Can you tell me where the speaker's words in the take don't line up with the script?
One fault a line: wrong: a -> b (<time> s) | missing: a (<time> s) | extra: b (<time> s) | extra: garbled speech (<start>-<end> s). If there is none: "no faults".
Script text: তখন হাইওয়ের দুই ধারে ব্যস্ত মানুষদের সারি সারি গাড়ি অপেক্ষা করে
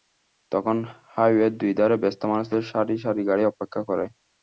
no faults